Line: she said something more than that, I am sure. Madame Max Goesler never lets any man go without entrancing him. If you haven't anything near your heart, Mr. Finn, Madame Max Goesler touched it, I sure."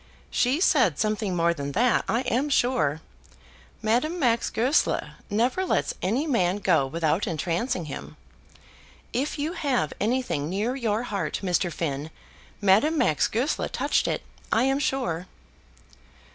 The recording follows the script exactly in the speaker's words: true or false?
false